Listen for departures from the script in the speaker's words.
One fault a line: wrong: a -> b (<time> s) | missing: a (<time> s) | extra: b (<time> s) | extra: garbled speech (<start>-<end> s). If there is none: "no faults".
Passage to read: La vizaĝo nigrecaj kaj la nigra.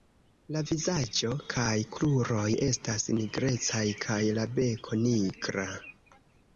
extra: kaj kruroj estas (1.5 s)
extra: beko (4.6 s)